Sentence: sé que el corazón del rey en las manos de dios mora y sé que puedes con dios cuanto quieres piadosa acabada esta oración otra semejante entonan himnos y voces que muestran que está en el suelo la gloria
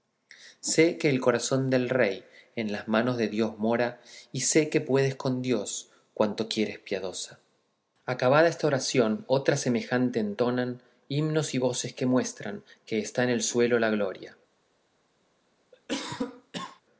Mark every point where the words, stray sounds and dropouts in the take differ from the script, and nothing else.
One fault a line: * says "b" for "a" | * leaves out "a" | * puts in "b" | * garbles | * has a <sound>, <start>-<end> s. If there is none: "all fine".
* has a cough, 15.7-16.8 s